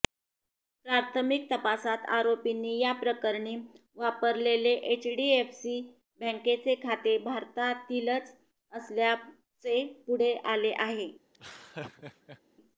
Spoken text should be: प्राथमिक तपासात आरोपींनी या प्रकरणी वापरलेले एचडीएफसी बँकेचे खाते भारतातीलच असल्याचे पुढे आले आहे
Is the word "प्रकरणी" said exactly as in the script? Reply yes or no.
yes